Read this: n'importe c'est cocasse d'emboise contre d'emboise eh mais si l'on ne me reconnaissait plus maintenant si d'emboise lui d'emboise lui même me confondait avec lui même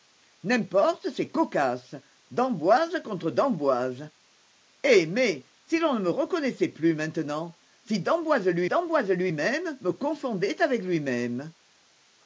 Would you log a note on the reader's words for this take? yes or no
no